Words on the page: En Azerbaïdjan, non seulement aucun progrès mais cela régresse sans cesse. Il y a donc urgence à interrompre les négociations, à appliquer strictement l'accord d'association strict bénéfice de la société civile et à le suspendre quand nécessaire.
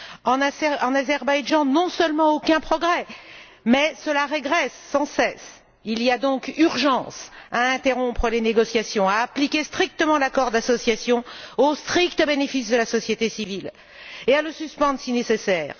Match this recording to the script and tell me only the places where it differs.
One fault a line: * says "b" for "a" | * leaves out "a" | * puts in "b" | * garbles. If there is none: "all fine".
* puts in "au"
* says "si" for "quand"